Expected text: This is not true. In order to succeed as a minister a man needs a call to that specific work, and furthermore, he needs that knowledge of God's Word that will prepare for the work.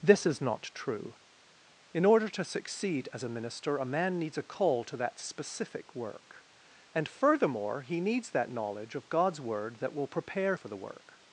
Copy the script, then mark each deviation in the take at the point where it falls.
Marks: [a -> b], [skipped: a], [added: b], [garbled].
This is not true. In order to succeed as a minister a man needs a call to that specific work, and furthermore, he needs that knowledge of God's Word that will prepare for the work.